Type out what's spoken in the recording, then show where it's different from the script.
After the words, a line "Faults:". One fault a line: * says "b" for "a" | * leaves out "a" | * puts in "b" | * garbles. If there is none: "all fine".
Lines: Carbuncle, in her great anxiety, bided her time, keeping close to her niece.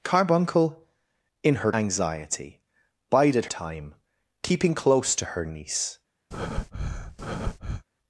Carbuncle, in her anxiety, bided time, keeping close to her niece.
Faults:
* leaves out "great"
* leaves out "her"